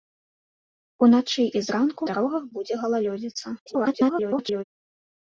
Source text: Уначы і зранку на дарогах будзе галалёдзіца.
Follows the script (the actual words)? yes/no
no